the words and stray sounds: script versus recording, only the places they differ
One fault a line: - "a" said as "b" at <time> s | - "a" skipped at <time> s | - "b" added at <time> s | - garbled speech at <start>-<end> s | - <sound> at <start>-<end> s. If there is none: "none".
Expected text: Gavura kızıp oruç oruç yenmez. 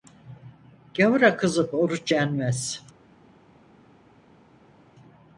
- "oruç" skipped at 2.1 s